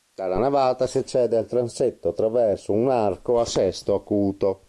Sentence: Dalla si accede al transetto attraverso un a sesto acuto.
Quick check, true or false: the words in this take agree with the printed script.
false